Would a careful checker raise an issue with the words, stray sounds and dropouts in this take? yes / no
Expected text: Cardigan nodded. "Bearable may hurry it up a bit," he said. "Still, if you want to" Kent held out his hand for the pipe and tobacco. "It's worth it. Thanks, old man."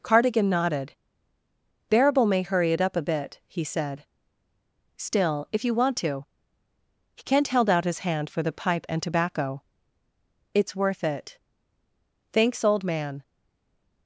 no